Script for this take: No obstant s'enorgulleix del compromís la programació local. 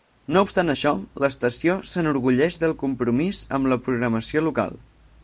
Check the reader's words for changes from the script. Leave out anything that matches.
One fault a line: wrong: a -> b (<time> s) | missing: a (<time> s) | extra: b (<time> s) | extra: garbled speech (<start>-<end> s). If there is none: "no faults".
extra: això l'estació (0.7 s)
extra: amb (3.6 s)